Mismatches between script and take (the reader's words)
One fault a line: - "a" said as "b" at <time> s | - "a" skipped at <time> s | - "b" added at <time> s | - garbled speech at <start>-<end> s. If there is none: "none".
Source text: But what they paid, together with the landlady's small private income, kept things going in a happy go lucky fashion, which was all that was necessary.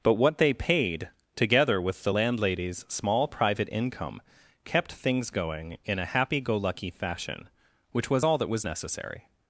none